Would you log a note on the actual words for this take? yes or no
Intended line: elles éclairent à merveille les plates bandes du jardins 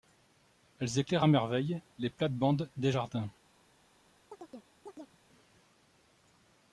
yes